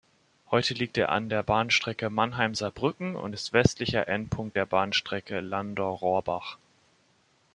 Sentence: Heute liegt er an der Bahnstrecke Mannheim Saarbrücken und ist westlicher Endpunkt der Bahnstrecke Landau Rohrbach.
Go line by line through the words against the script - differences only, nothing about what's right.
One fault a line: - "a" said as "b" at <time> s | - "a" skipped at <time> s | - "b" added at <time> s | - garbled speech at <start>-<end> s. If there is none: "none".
none